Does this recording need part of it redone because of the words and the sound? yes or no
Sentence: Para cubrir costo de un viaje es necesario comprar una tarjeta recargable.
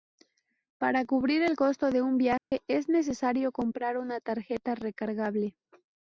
yes